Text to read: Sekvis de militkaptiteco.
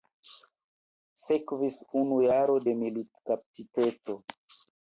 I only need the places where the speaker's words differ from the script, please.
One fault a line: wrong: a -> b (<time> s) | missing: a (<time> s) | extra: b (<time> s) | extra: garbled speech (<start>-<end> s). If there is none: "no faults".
extra: unu jaro (2.0 s)